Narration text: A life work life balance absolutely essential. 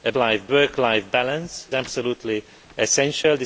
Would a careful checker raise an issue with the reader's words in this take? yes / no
no